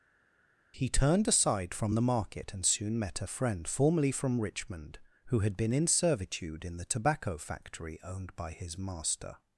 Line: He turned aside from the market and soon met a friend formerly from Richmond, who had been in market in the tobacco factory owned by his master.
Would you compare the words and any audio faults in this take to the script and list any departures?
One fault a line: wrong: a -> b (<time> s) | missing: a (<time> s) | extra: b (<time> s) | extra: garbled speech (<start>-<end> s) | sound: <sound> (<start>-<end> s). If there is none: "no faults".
wrong: market -> servitude (5.9 s)